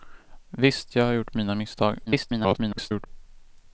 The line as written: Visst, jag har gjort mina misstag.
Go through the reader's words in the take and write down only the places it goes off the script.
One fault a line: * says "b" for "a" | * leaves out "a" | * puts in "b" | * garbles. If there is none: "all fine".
* garbles